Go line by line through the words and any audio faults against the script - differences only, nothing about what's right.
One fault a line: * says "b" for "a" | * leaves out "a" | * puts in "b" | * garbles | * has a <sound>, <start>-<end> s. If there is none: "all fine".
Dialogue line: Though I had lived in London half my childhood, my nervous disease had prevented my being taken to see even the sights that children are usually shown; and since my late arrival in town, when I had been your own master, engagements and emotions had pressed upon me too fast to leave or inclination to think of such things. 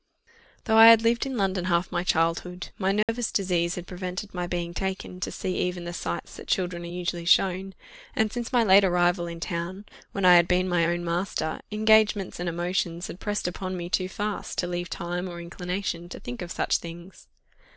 * has a dropout, 3.0-3.1 s
* says "my" for "your"
* puts in "time"